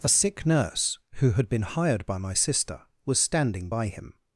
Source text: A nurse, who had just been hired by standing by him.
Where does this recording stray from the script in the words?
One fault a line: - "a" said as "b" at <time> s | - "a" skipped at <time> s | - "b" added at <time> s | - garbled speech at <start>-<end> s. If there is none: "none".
- "sick" added at 0.1 s
- "just" skipped at 1.5 s
- "my sister was" added at 2.2 s